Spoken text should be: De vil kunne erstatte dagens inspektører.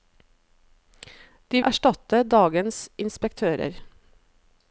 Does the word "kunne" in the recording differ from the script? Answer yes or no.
yes